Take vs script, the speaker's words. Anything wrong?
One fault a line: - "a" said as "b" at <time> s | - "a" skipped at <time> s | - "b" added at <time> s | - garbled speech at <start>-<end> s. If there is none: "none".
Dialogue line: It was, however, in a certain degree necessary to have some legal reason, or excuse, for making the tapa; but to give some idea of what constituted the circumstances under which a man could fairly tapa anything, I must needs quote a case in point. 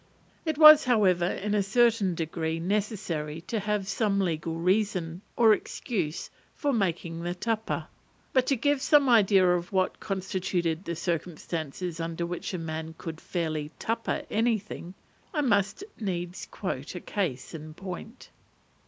none